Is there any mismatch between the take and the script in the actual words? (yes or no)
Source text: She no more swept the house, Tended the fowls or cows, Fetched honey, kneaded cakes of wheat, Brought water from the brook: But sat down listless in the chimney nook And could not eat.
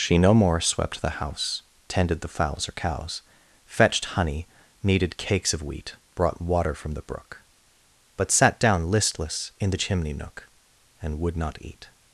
yes